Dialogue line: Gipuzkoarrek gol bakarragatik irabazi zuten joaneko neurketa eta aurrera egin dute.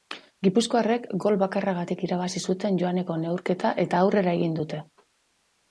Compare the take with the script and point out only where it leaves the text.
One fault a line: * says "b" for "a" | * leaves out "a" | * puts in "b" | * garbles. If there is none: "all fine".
all fine